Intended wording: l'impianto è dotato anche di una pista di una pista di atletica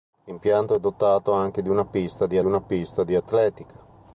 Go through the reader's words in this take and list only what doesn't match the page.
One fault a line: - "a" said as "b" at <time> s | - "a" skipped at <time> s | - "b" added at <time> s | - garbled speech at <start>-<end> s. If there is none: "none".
none